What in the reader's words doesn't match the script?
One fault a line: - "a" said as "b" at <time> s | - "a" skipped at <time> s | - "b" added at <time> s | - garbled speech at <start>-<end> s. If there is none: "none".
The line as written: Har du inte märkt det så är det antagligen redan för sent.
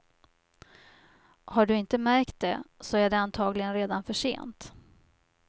none